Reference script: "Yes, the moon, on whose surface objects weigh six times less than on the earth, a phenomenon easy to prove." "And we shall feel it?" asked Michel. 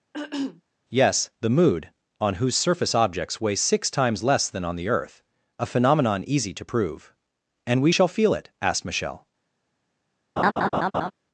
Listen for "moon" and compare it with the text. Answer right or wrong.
wrong